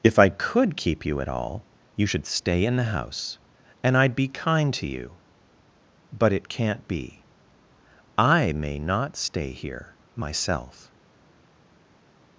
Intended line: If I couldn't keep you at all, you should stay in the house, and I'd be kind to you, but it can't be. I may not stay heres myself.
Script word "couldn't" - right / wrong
wrong